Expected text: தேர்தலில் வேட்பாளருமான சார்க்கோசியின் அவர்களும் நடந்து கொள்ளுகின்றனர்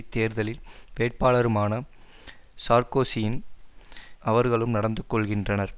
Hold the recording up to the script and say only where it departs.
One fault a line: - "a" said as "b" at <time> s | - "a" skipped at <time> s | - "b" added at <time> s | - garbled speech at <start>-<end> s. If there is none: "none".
none